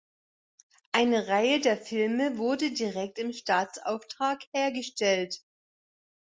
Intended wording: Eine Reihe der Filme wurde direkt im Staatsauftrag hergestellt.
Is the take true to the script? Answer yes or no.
yes